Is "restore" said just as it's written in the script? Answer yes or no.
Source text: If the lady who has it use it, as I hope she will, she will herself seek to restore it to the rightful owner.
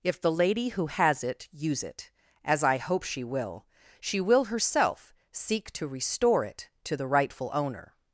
yes